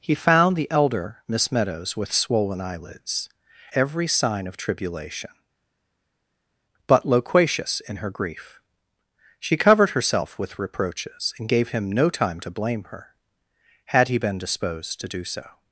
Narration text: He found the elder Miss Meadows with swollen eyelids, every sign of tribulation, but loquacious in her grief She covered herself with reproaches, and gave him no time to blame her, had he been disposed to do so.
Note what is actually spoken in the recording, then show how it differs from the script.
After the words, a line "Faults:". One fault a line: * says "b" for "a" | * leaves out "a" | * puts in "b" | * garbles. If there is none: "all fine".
He found the elder Miss Meadows with swollen eyelids, every sign of tribulation, but loquacious in her grief She covered herself with reproaches, and gave him no time to blame her, had he been disposed to do so.
Faults:
all fine